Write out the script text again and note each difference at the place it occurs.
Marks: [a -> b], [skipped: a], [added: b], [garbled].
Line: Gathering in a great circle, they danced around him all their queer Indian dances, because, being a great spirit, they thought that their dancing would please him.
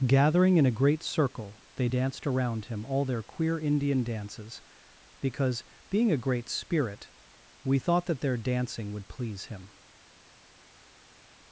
Gathering in a great circle, they danced around him all their queer Indian dances, because, being a great spirit, [they -> we] thought that their dancing would please him.